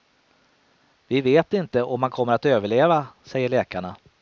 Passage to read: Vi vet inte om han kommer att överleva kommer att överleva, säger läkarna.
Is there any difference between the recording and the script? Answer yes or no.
yes